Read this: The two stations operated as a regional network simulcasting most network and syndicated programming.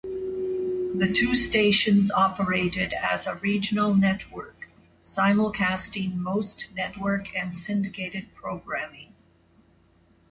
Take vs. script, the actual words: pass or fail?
pass